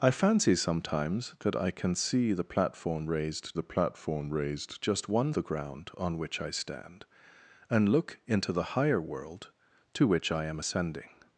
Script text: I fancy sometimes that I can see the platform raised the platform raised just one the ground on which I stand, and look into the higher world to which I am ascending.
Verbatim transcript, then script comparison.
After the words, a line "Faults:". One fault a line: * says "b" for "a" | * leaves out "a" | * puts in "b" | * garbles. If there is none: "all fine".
I fancy sometimes that I can see the platform raised the platform raised just one the ground on which I stand, and look into the higher world to which I am ascending.
Faults:
all fine